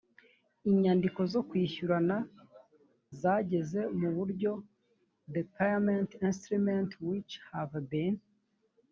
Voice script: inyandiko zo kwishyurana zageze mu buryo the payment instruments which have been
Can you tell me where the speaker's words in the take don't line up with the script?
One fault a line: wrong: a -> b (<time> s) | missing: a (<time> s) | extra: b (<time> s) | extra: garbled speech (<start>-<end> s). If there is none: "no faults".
no faults